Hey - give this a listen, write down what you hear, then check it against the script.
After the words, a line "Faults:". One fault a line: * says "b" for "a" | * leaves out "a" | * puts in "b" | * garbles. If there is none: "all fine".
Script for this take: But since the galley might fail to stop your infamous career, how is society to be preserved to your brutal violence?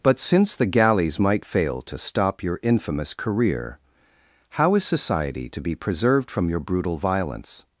But since the galleys might fail to stop your infamous career, how is society to be preserved from your brutal violence?
Faults:
* says "galleys" for "galley"
* says "from" for "to"